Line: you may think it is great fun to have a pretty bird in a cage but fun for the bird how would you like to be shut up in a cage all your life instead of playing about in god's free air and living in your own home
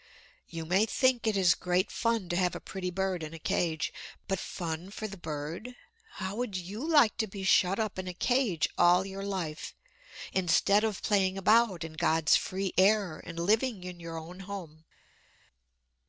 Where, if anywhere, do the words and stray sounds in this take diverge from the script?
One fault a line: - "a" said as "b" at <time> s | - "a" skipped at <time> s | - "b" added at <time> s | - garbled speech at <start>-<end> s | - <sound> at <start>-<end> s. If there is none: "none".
none